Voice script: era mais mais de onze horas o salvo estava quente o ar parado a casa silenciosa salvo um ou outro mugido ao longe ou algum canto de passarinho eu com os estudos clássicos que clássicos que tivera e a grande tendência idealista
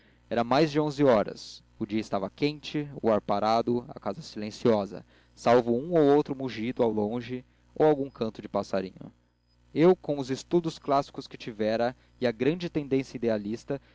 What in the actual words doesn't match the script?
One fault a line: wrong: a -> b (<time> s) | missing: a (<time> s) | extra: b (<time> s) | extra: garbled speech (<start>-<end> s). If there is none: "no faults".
missing: mais (0.7 s)
wrong: salvo -> dia (1.9 s)
missing: clássicos que (11.4 s)